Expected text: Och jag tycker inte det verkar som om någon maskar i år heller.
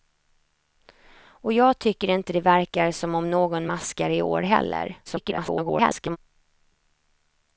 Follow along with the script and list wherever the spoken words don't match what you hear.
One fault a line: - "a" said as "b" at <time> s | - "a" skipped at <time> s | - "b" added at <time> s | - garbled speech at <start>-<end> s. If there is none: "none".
- garbled speech at 5.1-6.2 s